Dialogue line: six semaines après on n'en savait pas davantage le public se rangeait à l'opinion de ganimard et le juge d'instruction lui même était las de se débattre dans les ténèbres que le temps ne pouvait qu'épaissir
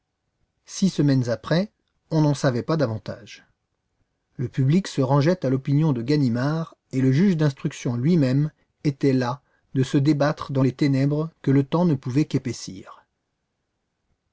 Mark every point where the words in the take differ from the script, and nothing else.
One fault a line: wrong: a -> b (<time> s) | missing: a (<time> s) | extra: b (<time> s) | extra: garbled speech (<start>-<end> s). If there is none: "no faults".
no faults